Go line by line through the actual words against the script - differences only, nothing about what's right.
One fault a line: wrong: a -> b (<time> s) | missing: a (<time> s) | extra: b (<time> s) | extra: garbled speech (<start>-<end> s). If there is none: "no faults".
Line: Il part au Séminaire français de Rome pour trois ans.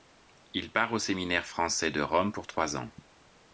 no faults